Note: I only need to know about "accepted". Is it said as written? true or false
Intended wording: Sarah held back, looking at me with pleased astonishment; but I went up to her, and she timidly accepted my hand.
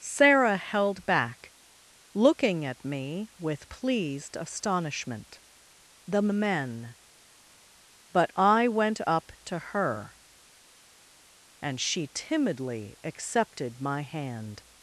true